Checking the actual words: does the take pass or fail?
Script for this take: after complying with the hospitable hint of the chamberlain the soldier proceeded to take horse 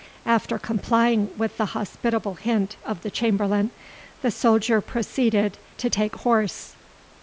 pass